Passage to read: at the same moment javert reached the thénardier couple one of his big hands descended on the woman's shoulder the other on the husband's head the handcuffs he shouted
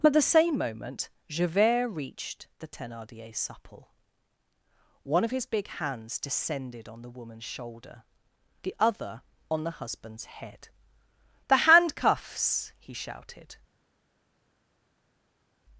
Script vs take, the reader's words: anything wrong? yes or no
yes